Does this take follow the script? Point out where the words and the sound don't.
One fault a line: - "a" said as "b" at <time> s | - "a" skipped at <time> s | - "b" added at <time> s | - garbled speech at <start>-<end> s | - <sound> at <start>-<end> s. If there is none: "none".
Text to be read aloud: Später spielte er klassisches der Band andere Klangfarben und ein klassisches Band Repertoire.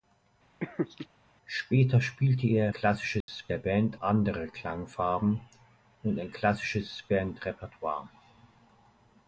- laugh at 0.6-1.1 s
- dropout at 3.2-3.3 s